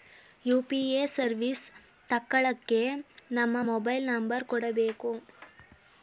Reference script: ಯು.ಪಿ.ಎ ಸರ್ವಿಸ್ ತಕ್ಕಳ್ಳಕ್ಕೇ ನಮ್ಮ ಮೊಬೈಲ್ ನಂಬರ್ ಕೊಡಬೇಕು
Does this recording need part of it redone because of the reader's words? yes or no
no